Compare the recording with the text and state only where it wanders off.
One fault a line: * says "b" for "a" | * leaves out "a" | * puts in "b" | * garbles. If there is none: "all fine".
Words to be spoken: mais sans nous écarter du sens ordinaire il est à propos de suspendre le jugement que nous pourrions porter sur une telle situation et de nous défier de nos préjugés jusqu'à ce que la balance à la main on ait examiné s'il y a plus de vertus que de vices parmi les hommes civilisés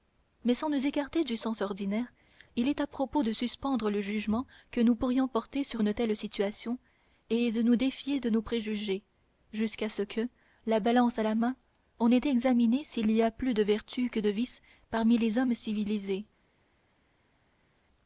all fine